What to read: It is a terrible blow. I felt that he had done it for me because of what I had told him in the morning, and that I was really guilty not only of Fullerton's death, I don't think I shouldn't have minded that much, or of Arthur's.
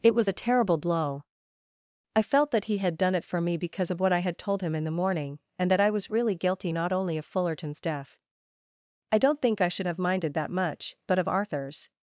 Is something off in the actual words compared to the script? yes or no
yes